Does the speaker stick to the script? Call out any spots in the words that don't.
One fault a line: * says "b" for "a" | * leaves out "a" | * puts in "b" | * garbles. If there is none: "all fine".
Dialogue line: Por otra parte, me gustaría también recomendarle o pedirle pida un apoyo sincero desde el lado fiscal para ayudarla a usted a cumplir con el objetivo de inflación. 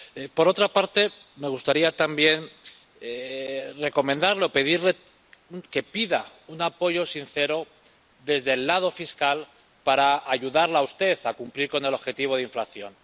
* puts in "que"